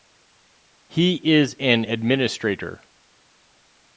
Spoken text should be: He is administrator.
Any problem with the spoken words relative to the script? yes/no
yes